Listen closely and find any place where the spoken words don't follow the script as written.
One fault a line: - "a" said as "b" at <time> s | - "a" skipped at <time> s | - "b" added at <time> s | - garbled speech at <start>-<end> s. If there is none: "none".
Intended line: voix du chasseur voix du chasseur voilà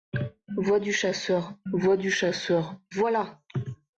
none